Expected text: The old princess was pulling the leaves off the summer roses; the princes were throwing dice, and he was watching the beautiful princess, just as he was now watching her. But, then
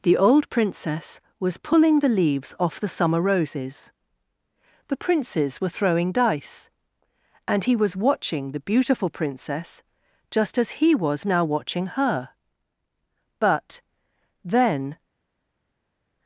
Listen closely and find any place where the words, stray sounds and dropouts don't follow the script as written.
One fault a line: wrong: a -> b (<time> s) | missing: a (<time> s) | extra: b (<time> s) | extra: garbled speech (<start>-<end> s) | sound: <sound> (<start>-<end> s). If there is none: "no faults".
no faults